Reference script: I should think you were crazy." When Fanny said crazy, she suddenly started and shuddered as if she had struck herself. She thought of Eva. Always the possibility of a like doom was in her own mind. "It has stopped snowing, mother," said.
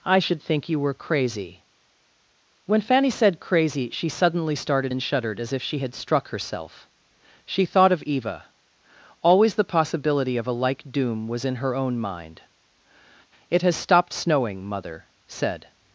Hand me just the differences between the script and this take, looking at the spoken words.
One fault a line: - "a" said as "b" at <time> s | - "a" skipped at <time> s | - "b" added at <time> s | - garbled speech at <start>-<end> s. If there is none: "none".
none